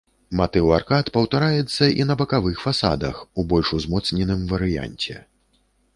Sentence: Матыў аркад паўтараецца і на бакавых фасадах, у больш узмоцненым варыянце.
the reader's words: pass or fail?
pass